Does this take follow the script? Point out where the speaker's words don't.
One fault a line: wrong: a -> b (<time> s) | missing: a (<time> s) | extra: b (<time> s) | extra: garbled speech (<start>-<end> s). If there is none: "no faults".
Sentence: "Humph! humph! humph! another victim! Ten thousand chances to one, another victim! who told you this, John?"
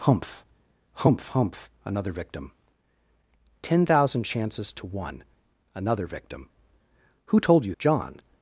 missing: this (7.7 s)